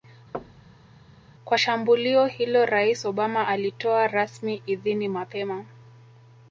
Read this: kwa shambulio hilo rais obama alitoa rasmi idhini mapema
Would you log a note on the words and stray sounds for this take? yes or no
yes